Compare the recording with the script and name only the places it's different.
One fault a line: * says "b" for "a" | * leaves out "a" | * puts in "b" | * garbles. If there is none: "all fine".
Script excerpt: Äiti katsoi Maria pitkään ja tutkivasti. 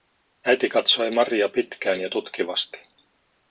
all fine